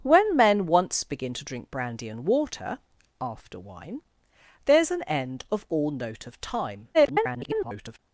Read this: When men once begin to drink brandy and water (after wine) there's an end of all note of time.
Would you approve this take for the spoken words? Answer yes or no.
no